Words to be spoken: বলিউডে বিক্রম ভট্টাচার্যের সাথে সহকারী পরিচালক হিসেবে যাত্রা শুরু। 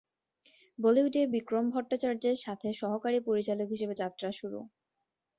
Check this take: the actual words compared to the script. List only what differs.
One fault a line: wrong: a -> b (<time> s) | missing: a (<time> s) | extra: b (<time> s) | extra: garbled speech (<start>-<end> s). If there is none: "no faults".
no faults